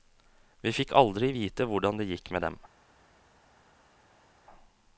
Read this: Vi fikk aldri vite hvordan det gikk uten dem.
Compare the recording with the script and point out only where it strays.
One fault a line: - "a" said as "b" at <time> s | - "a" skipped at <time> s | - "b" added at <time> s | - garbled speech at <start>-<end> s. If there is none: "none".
- "uten" said as "med" at 2.4 s